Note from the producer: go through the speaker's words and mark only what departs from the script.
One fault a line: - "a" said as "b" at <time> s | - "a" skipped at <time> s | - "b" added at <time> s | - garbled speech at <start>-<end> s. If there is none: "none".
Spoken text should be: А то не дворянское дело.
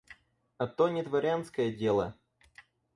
none